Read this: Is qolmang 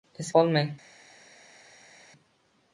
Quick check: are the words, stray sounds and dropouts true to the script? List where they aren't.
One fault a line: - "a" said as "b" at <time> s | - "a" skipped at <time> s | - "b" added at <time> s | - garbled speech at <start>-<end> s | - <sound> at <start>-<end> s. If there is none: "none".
none